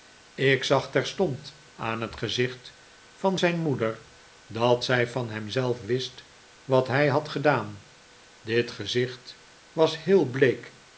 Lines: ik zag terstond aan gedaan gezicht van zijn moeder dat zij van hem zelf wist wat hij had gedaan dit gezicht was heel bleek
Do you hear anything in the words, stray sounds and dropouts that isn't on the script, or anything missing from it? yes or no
yes